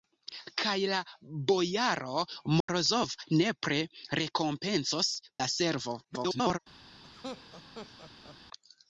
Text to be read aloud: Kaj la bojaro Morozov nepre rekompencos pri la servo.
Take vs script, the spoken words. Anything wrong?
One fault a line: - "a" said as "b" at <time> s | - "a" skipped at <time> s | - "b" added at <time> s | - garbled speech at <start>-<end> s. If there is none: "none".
- "pri" skipped at 5.1 s
- garbled speech at 6.0-6.6 s